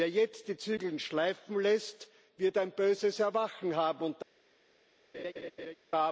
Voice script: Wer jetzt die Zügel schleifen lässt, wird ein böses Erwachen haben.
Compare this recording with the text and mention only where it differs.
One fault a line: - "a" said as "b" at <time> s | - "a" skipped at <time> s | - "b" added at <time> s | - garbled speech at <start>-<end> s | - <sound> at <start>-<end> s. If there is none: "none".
- laugh at 5.1-5.8 s